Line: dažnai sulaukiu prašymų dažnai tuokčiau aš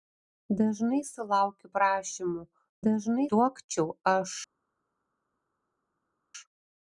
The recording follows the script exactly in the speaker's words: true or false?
true